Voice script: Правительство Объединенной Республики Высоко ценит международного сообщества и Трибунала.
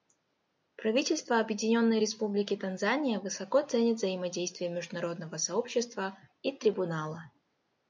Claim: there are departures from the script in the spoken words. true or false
true